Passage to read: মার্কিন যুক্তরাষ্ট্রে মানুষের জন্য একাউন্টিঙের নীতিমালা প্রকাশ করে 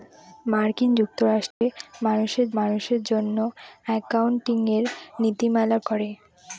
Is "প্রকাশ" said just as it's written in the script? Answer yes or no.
no